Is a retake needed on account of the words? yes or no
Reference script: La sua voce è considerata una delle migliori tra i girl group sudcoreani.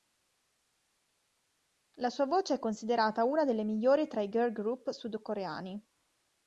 no